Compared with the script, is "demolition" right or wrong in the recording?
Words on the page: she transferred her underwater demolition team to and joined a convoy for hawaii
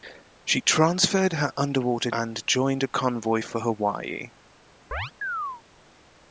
wrong